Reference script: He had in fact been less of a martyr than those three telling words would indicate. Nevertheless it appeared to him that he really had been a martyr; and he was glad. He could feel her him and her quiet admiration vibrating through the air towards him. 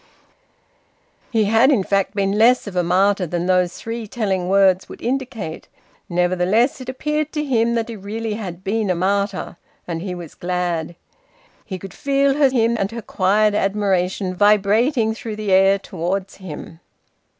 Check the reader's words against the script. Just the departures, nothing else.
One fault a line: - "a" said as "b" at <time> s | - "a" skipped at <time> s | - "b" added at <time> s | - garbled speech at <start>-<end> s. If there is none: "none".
none